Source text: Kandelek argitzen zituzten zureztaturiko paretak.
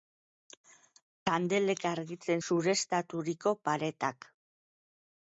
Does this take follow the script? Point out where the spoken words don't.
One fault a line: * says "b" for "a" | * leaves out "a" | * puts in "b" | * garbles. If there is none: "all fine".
* leaves out "zituzten"